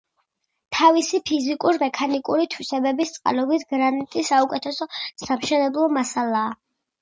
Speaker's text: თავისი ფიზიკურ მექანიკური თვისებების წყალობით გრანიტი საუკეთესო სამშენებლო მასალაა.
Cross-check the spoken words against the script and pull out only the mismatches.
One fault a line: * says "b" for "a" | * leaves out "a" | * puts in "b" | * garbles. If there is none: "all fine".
all fine